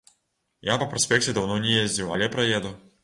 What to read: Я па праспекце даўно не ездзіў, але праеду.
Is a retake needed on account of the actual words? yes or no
no